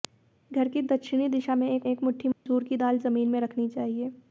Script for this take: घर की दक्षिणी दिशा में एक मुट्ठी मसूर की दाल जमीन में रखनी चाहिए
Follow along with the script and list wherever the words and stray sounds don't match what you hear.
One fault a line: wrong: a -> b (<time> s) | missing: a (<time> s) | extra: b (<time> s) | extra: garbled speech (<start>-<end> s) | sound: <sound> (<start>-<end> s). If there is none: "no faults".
extra: एक (1.8 s)
sound: dropout (2.3-2.5 s)